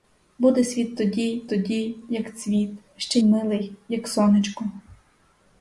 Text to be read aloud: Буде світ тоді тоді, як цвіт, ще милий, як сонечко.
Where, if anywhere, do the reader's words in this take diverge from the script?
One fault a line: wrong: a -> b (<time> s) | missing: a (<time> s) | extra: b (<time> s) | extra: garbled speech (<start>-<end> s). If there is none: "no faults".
no faults